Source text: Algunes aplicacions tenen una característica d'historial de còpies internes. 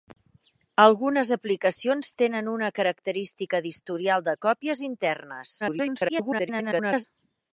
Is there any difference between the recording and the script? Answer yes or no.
yes